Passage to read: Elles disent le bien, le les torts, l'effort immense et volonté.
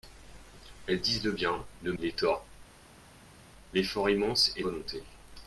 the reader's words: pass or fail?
pass